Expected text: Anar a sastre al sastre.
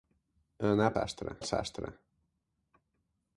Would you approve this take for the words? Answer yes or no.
yes